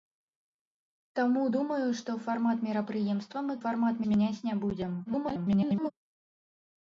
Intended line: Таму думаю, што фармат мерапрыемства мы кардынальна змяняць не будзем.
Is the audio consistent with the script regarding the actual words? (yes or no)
no